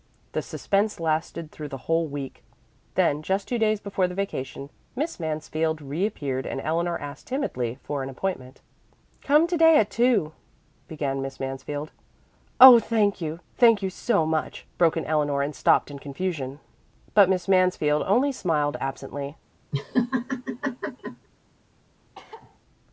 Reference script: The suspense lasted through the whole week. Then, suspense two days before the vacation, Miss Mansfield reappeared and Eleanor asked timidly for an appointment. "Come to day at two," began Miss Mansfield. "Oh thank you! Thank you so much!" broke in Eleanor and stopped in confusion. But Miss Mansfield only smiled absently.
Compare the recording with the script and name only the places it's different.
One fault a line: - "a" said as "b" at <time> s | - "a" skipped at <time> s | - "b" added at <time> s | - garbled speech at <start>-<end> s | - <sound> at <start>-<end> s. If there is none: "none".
- "suspense" said as "just" at 3.2 s
- laugh at 19.7-21.3 s
- cough at 22.1-22.6 s